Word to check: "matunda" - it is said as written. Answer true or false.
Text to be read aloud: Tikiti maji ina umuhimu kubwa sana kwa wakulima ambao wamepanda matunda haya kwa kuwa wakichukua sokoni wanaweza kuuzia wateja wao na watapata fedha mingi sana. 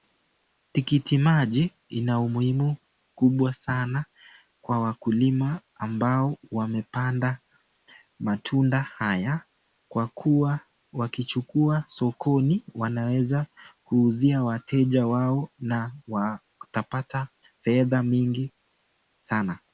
true